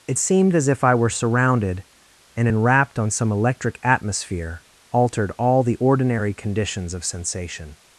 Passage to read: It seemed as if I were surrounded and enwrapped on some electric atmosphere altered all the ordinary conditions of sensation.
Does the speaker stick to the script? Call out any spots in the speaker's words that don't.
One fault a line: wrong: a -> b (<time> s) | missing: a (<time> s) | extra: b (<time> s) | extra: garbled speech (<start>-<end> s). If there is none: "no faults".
no faults